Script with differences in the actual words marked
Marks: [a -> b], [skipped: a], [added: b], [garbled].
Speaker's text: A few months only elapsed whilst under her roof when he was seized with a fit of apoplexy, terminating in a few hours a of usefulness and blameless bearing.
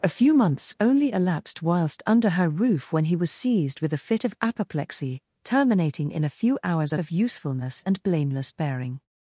A few months only elapsed whilst under her roof when he was seized with a fit of apoplexy, terminating in a few hours a of usefulness and blameless bearing.